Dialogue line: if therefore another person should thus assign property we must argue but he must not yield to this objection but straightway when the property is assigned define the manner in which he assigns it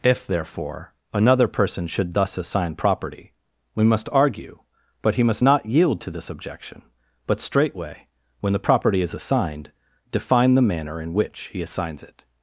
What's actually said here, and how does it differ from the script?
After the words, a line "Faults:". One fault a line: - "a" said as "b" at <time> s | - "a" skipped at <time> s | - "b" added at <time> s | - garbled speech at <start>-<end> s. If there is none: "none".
if therefore another person should thus assign property we must argue but he must not yield to this objection but straightway when the property is assigned define the manner in which he assigns it
Faults:
none